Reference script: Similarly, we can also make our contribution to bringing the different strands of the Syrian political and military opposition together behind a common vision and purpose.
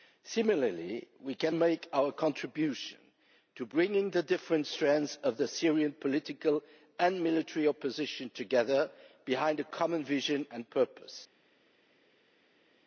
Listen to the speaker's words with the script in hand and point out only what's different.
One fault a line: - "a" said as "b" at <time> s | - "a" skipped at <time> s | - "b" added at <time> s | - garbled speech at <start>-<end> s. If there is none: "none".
- "also" skipped at 1.6 s